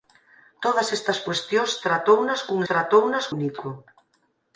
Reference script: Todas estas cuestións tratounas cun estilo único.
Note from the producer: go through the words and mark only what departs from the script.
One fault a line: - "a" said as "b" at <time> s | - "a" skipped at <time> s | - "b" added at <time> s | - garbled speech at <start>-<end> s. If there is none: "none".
- "estilo" said as "tratounas" at 2.7 s